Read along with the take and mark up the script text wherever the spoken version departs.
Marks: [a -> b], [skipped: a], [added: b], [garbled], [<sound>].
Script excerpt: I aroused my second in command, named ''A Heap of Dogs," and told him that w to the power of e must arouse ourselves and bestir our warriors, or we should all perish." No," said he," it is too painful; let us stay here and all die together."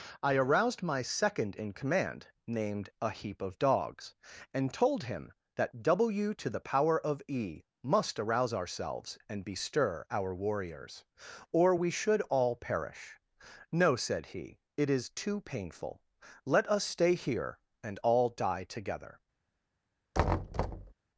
I aroused my second in command, named ''A Heap of Dogs," and told him that w to the power of e must arouse ourselves and bestir our warriors, or we should all perish." No," said he," it is too painful; let us stay here and all die together." [thud]